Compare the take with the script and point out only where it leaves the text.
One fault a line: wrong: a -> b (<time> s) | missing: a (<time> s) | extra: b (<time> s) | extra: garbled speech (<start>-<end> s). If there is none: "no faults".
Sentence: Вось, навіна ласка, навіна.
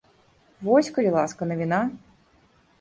wrong: навіна -> калі (0.9 s)